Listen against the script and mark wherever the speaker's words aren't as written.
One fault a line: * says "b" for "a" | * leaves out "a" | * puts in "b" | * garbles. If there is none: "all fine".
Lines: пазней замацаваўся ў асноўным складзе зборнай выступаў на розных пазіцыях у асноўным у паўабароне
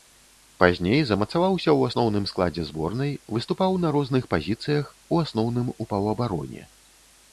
all fine